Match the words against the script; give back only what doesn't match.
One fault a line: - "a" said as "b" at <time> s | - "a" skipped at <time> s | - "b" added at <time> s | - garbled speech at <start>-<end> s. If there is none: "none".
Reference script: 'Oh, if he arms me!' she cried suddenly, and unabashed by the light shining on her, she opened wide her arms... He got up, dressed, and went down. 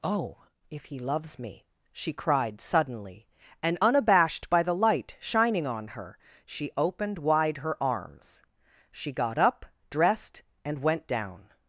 - "arms" said as "loves" at 1.0 s
- "He" said as "She" at 8.9 s